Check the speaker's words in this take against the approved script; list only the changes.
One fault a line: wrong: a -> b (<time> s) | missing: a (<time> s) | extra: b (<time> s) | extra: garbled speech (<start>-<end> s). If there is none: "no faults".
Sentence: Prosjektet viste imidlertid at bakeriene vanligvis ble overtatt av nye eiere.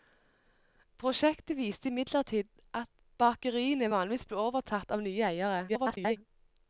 extra: garbled speech (5.7-6.2 s)